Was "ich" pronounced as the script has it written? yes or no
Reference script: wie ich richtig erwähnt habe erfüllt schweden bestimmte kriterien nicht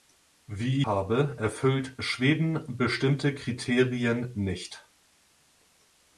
no